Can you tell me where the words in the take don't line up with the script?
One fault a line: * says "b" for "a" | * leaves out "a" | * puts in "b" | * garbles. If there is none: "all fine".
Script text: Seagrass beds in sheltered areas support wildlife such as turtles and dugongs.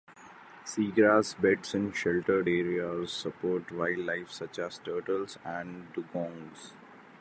all fine